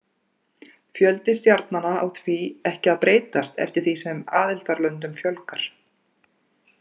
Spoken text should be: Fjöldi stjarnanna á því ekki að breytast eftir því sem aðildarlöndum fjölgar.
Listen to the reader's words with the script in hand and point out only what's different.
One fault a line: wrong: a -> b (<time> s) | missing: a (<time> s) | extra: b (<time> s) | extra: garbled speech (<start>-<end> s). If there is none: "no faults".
no faults